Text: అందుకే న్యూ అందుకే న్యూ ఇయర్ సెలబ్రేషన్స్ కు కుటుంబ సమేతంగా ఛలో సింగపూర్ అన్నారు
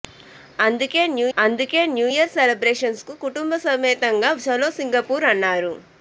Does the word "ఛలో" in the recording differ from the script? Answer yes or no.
no